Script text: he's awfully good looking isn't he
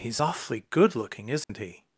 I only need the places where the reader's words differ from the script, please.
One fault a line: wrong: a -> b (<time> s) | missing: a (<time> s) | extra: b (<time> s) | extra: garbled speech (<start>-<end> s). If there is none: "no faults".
no faults